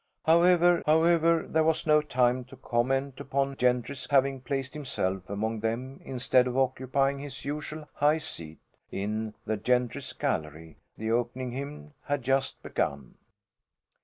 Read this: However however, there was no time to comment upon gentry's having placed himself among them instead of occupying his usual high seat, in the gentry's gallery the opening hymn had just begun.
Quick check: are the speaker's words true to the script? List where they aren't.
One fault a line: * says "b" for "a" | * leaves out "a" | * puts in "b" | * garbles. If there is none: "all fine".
all fine